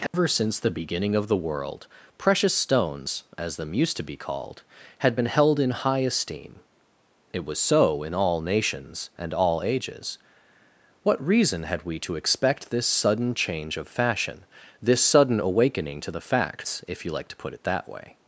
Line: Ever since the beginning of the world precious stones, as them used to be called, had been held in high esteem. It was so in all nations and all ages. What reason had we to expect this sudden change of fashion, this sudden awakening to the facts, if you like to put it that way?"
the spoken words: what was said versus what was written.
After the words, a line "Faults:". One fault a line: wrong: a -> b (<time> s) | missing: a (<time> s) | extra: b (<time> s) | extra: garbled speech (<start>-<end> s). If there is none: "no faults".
Ever since the beginning of the world precious stones, as them used to be called, had been held in high esteem. It was so in all nations and all ages. What reason had we to expect this sudden change of fashion, this sudden awakening to the facts, if you like to put it that way?"
Faults:
no faults